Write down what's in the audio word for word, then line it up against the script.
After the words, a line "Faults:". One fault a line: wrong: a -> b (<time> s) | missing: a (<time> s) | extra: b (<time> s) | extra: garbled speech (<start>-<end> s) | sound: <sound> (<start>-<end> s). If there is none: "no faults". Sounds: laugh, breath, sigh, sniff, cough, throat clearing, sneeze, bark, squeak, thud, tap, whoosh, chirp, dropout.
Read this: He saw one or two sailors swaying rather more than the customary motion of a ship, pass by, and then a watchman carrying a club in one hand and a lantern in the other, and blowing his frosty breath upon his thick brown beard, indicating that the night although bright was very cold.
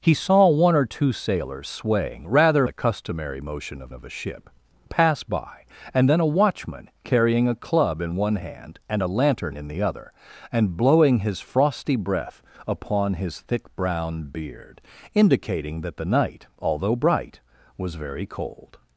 He saw one or two sailors swaying rather the customary motion of of a ship, pass by, and then a watchman carrying a club in one hand and a lantern in the other, and blowing his frosty breath upon his thick brown beard, indicating that the night although bright was very cold.
Faults:
missing: more than (2.7 s)
extra: of (3.9 s)